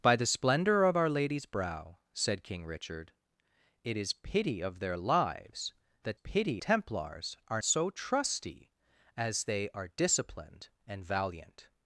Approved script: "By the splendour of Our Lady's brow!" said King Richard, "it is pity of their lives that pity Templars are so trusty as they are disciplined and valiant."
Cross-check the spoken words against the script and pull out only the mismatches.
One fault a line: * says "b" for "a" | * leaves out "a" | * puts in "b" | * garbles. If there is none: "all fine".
all fine